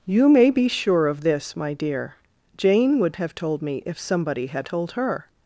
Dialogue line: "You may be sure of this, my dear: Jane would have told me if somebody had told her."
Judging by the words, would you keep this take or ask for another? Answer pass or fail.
pass